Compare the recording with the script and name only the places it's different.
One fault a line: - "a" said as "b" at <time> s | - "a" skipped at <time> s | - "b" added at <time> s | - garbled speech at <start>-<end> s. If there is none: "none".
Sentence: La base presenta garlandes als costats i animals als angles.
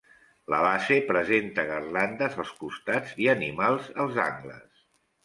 none